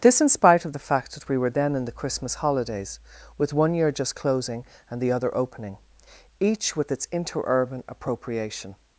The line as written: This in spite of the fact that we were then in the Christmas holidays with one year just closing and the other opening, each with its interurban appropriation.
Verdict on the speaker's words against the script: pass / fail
pass